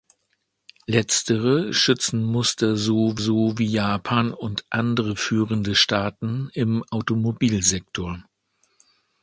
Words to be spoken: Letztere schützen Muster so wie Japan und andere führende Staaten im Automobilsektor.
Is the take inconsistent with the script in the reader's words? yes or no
yes